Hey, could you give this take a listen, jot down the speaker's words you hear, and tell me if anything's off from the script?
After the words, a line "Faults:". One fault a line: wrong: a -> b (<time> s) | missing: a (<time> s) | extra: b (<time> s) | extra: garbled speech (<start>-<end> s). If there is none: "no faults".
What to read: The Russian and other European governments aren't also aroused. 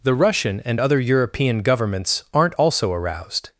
The Russian and other European governments aren't also aroused.
Faults:
no faults